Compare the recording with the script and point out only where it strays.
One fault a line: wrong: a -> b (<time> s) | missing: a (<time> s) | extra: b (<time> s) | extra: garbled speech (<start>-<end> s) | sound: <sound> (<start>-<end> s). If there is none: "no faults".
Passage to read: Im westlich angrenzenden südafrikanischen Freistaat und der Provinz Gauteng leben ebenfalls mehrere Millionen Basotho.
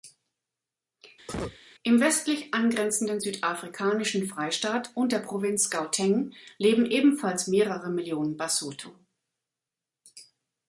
sound: cough (1.3-1.6 s)